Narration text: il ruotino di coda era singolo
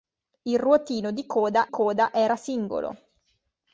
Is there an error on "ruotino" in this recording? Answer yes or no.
no